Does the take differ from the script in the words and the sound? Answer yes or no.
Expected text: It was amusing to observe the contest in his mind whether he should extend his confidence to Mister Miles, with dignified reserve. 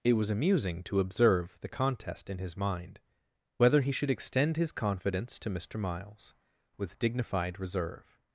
no